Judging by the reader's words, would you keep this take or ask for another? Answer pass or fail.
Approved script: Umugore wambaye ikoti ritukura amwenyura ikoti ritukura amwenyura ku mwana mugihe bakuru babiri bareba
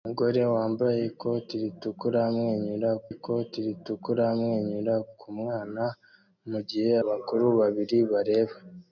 pass